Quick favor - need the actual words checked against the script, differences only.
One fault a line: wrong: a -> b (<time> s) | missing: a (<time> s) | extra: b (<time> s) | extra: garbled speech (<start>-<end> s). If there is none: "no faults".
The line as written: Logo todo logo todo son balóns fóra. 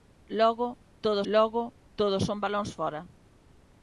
no faults